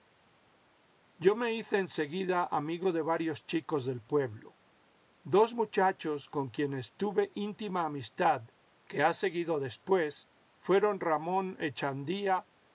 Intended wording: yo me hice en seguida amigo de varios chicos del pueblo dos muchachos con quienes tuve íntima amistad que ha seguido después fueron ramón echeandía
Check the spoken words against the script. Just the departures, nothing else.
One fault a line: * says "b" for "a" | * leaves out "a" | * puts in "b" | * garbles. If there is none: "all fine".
all fine